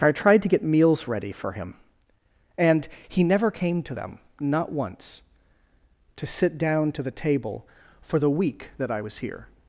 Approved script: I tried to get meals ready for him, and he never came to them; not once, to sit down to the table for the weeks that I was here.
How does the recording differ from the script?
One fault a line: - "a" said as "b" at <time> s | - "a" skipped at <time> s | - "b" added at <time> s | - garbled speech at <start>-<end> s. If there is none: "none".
- "weeks" said as "week" at 8.3 s